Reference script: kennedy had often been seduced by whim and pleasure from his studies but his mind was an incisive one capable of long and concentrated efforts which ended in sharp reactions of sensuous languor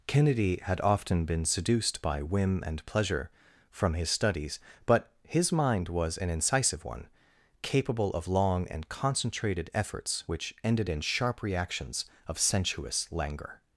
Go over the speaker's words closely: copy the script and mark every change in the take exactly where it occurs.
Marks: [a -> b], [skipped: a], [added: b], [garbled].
kennedy had often been seduced by whim and pleasure from his studies but his mind was an incisive one capable of long and concentrated efforts which ended in sharp reactions of sensuous languor